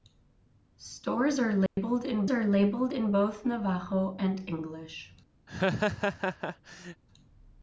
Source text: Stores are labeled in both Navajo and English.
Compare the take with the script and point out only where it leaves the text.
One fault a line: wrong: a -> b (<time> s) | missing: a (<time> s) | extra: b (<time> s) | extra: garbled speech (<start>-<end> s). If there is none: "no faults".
extra: are labeled in (2.3 s)